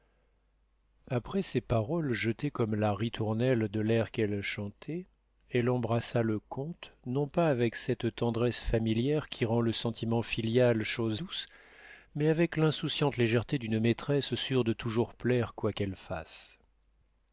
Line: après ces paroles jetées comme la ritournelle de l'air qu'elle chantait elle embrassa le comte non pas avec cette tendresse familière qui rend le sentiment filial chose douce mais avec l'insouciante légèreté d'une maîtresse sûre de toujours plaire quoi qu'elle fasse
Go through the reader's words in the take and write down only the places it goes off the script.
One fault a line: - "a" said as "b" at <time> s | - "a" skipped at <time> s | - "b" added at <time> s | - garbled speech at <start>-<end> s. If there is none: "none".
none